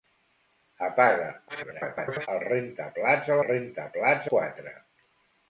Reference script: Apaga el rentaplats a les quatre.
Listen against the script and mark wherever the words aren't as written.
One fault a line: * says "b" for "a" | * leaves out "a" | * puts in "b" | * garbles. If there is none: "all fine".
* garbles
* says "rentaplats" for "les"